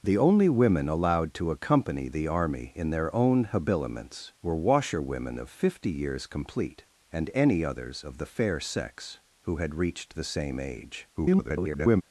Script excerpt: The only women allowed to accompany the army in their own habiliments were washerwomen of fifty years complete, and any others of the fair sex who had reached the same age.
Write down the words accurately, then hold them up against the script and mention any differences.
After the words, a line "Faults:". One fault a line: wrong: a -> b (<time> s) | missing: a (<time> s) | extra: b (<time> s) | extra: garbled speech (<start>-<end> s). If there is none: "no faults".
The only women allowed to accompany the army in their own habiliments were washerwomen of fifty years complete, and any others of the fair sex who had reached the same age. [garbled]
Faults:
extra: garbled speech (11.1-12.0 s)